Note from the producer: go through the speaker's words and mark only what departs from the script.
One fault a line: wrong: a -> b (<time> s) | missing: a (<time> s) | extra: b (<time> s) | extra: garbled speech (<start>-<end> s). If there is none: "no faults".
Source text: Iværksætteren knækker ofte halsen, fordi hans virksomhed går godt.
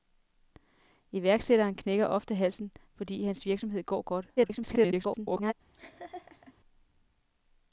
extra: garbled speech (4.4-5.5 s)